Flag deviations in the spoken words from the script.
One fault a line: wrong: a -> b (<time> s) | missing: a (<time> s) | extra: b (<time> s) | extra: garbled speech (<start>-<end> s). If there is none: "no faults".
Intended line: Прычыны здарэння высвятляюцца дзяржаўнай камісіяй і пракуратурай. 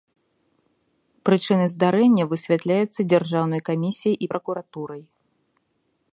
no faults